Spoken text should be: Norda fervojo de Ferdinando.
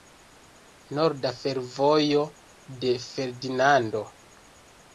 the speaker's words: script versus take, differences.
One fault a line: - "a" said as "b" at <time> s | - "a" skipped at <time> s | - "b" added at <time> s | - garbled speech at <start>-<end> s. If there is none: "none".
none